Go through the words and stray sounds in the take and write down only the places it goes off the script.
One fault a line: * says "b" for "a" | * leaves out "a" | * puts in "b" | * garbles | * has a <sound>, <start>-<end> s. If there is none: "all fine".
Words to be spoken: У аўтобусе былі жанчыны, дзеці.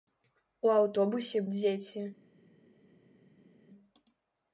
* leaves out "былі жанчыны"